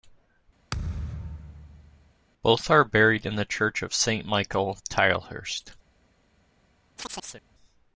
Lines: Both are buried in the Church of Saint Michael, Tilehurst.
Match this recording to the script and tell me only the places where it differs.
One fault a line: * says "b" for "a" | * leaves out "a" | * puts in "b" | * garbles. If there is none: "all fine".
all fine